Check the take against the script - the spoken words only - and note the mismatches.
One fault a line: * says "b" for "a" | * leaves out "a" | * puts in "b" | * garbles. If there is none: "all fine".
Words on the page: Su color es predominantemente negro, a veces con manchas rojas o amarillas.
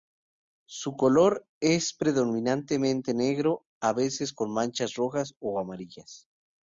all fine